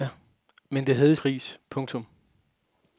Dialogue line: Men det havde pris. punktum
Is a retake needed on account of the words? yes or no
no